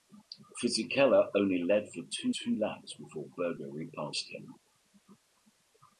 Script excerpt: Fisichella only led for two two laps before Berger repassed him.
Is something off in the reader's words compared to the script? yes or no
no